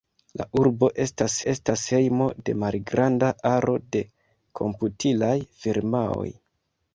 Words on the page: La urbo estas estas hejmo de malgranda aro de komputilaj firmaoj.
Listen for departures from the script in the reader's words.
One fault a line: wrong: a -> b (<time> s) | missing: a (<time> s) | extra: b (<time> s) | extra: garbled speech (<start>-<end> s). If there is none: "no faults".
no faults